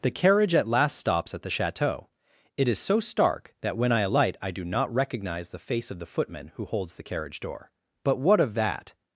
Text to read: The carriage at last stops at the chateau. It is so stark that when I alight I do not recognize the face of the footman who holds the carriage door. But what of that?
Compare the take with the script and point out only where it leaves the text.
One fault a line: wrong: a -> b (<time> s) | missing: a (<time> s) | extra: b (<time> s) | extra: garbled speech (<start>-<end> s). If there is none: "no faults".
no faults